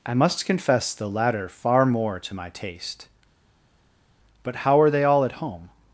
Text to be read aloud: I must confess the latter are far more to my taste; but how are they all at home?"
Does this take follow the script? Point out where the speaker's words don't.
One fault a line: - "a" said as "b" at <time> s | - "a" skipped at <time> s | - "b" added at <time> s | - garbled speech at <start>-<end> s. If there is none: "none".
- "are" skipped at 1.5 s